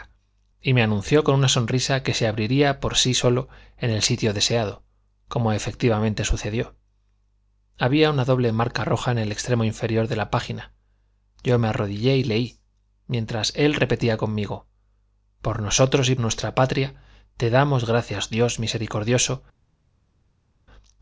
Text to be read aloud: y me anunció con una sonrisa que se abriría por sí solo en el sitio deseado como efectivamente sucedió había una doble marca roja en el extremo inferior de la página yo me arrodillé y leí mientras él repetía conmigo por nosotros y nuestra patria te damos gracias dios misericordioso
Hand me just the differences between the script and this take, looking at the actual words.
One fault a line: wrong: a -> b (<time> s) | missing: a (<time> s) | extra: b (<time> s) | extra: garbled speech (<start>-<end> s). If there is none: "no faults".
no faults